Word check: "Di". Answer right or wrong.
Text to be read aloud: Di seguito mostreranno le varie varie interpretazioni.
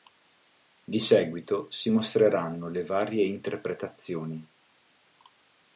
right